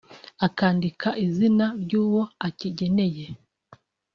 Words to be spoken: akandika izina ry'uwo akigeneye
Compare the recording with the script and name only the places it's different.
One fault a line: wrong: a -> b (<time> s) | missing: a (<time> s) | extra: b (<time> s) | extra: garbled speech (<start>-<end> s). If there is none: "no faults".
no faults